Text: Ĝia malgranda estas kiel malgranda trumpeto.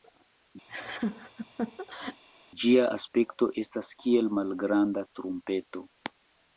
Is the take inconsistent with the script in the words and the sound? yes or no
yes